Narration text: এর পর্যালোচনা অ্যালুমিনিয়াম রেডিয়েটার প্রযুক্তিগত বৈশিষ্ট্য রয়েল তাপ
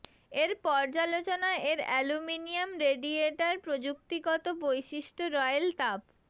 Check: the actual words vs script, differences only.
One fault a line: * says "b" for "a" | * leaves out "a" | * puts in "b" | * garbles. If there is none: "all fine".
* puts in "এর"